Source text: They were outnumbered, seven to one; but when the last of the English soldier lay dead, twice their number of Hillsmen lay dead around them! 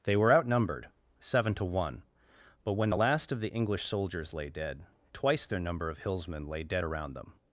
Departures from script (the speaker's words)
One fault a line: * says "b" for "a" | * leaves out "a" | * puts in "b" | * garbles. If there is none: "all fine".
* says "soldiers" for "soldier"